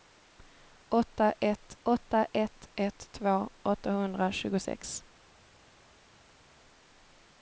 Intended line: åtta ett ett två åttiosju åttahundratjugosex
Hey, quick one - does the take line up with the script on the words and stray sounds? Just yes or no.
no